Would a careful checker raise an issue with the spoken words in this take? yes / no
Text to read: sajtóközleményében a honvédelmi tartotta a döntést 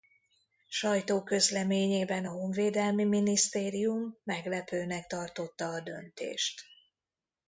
yes